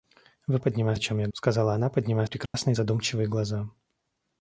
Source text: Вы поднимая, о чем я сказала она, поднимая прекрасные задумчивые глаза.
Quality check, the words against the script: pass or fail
pass